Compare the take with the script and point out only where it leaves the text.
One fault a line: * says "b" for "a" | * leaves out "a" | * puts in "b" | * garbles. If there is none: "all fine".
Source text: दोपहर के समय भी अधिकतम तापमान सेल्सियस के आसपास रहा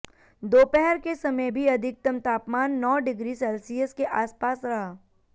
* puts in "नौ डिग्री"